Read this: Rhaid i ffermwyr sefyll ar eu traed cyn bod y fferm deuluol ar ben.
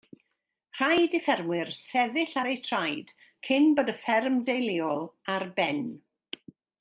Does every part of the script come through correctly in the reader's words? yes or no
yes